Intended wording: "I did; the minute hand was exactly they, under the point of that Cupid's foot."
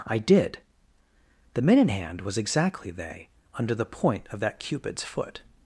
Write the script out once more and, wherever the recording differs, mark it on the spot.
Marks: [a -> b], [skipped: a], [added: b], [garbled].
"I did; the minute hand was exactly they, under the point of that Cupid's foot."